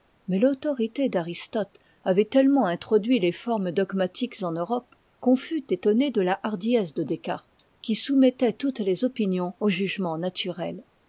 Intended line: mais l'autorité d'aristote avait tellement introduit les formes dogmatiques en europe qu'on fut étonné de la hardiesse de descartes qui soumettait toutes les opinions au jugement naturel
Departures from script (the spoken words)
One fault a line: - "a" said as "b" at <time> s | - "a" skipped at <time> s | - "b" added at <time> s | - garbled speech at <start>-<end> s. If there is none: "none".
none